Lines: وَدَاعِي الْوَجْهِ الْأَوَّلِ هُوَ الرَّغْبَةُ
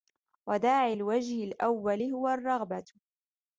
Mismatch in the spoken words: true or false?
false